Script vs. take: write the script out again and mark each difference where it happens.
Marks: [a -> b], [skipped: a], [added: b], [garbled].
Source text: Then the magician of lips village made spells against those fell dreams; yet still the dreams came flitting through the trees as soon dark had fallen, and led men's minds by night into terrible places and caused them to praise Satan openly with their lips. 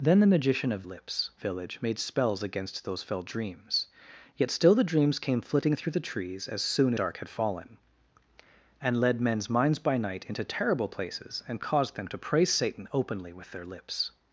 Then the magician of lips village made spells against those fell dreams; yet still the dreams came flitting through the trees as soon dark had fallen, and led men's minds by night into terrible places and caused them to praise Satan openly with their lips.